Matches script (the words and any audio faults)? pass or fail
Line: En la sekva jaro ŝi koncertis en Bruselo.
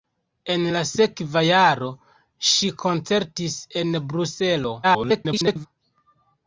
fail